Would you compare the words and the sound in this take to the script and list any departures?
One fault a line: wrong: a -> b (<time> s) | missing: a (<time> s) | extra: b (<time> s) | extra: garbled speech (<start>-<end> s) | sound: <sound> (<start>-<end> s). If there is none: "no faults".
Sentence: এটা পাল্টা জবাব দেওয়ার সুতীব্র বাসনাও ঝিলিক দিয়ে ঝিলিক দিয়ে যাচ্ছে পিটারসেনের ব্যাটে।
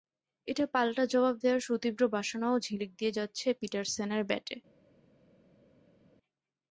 missing: ঝিলিক দিয়ে (3.1 s)